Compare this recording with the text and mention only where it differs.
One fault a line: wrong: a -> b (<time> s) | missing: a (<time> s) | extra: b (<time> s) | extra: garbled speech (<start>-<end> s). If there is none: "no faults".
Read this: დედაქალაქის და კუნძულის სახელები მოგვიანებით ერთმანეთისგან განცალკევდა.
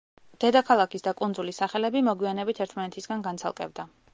no faults